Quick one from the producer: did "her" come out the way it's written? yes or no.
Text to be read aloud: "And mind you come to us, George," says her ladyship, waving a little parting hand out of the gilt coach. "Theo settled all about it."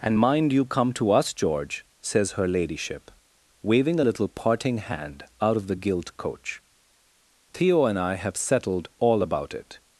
yes